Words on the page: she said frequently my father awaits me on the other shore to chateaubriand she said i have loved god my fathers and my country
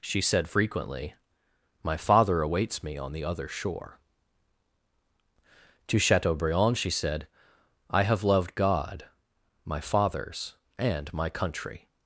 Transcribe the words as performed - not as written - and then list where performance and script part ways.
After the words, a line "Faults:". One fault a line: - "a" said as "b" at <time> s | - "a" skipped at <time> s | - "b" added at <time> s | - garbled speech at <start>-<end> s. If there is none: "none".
she said frequently my father awaits me on the other shore to chateaubriand she said i have loved god my fathers and my country
Faults:
none